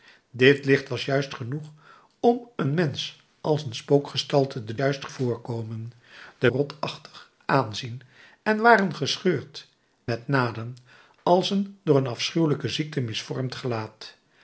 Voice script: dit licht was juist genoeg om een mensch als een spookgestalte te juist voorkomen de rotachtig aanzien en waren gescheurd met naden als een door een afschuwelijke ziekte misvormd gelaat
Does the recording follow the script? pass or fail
pass